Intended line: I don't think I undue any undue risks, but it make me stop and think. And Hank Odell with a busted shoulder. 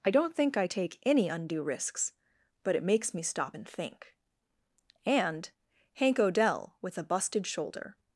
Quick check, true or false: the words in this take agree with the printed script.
false